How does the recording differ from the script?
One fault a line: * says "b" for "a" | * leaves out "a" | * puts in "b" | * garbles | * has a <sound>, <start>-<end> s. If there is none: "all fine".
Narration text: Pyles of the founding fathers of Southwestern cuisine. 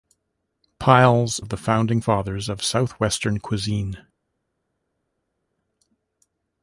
all fine